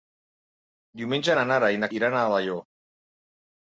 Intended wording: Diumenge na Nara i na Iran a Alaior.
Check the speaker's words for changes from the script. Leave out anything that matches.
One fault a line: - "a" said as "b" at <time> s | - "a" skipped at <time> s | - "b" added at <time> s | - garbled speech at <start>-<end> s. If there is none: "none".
none